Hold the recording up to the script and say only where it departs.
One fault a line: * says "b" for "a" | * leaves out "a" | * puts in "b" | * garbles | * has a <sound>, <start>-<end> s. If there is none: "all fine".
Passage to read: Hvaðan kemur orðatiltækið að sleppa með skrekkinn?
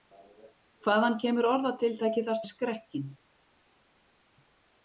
* leaves out "sleppa"